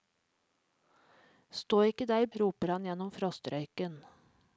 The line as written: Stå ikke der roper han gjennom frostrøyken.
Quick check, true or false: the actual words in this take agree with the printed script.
true